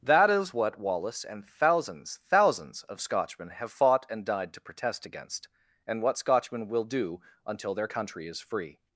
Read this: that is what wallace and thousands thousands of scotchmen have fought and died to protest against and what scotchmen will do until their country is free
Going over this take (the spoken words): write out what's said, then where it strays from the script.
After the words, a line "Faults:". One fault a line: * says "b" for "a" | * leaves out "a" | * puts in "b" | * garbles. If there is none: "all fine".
that is what wallace and thousands thousands of scotchmen have fought and died to protest against and what scotchmen will do until their country is free
Faults:
all fine